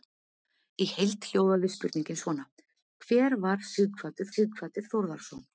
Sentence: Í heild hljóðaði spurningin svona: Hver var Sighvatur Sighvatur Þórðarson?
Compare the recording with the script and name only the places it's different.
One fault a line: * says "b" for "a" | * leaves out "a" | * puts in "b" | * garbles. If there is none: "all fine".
all fine